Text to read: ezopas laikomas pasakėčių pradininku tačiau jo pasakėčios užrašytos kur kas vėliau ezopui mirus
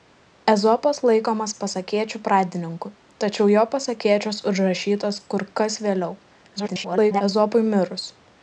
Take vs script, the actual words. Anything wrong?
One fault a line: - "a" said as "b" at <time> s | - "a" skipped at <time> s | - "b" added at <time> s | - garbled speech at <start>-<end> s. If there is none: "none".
- garbled speech at 6.6-7.2 s